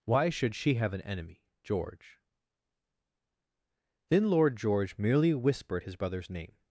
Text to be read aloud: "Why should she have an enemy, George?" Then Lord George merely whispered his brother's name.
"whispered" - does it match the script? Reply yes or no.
yes